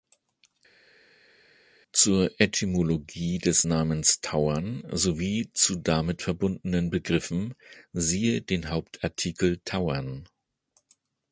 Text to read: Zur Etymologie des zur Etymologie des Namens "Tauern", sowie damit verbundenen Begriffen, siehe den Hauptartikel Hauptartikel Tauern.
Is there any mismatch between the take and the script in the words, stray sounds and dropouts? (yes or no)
yes